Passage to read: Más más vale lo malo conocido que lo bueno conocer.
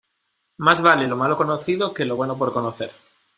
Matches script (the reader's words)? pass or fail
fail